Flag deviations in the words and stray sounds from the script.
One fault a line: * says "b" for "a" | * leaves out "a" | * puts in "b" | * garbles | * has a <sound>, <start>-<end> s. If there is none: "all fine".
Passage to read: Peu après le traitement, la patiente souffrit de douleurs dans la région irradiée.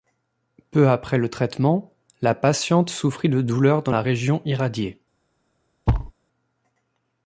* has a thud, 5.9-6.1 s